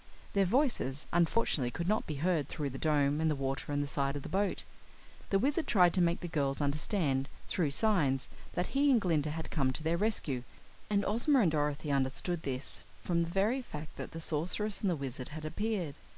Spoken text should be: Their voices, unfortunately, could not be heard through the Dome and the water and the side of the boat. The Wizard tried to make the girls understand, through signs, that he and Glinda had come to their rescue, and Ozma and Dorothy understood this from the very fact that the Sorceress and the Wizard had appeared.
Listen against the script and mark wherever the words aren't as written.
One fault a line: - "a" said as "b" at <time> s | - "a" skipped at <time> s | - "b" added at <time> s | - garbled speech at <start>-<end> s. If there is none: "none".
none